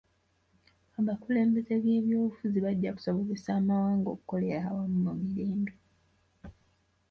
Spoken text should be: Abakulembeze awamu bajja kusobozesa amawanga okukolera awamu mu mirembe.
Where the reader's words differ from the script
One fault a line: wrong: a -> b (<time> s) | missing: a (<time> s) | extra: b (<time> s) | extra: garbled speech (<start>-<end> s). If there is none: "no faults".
wrong: awamu -> b'ebyobufuzi (1.8 s)